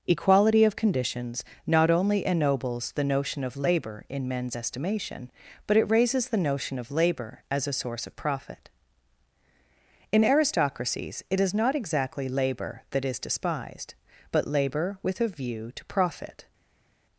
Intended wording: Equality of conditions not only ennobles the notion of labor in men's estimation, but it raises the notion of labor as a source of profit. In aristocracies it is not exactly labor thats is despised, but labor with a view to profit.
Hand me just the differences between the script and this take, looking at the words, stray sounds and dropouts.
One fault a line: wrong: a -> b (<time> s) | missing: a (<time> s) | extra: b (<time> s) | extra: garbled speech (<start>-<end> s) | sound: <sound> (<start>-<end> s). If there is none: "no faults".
wrong: thats -> that (12.9 s)